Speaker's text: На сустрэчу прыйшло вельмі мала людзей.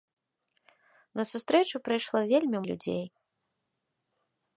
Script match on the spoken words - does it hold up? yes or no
no